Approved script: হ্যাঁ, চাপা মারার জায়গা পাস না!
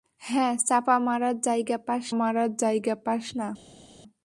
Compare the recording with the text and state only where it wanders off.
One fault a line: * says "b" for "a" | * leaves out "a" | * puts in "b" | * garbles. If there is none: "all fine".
* puts in "মারার জায়গা পাস"